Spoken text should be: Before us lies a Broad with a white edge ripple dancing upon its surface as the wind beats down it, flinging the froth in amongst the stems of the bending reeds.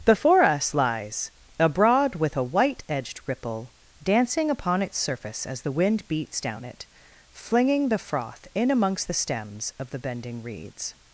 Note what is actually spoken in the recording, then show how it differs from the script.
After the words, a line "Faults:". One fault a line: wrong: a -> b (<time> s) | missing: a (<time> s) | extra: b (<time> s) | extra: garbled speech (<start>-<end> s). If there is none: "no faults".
Before us lies a Broad with a white edged ripple dancing upon its surface as the wind beats down it, flinging the froth in amongst the stems of the bending reeds.
Faults:
wrong: edge -> edged (2.9 s)